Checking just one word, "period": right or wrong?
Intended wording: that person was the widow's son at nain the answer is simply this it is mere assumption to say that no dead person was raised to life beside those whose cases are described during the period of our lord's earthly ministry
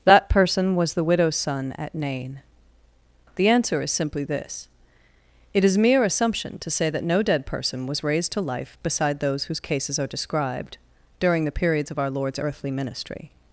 wrong